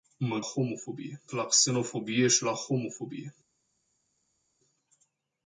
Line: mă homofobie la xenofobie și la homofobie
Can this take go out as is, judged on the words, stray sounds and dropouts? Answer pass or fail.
pass